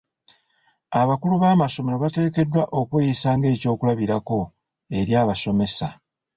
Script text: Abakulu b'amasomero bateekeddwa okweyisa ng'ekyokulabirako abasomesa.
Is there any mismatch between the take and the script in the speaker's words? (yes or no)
yes